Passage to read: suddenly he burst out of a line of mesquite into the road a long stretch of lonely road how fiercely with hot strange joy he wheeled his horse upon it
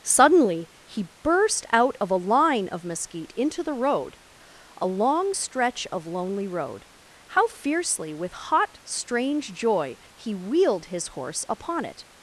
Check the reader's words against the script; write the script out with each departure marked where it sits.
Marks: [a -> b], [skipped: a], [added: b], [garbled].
suddenly he burst out of a line of mesquite into the road a long stretch of lonely road how fiercely with hot strange joy he wheeled his horse upon it